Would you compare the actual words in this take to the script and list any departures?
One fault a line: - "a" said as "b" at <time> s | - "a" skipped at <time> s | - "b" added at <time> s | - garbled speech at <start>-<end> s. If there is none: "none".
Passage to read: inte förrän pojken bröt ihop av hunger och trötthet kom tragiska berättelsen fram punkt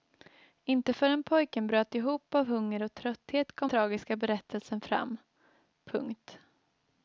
none